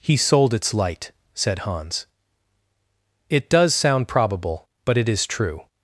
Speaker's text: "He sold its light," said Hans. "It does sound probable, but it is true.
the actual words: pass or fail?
pass